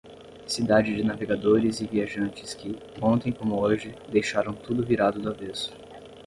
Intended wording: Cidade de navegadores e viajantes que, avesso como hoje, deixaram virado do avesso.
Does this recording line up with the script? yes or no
no